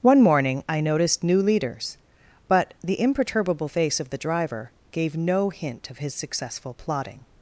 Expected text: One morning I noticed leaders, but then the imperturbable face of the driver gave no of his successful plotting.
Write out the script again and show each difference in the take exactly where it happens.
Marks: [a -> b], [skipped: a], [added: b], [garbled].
One morning I noticed [added: new] leaders, but [skipped: then] the imperturbable face of the driver gave no [added: hint] of his successful plotting.